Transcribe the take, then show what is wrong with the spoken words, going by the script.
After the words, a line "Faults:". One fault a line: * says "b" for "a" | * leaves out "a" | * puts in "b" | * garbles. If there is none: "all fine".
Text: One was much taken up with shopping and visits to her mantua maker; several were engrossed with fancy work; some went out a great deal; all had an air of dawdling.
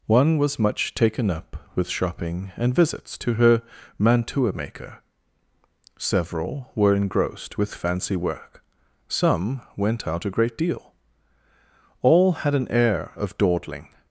One was much taken up with shopping and visits to her mantua maker; several were engrossed with fancy work; some went out a great deal; all had an air of dawdling.
Faults:
all fine